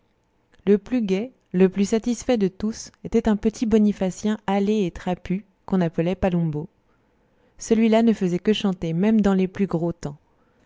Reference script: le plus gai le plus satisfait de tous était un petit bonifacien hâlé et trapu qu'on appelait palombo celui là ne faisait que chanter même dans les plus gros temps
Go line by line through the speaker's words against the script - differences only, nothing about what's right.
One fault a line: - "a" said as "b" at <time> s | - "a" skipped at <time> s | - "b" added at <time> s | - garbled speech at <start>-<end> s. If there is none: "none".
none